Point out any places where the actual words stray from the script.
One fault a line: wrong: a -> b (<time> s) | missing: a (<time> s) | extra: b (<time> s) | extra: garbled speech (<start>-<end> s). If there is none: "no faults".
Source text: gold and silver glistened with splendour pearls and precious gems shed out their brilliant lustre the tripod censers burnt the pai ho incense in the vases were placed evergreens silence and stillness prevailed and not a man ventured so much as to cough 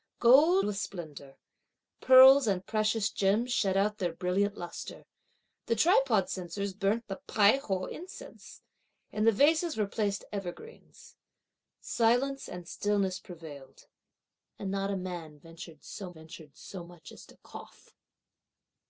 missing: and silver glistened (0.7 s)
extra: ventured so (16.1 s)